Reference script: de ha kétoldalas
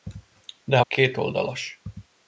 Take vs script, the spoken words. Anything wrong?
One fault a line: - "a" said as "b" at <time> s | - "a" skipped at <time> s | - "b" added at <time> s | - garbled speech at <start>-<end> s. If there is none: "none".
none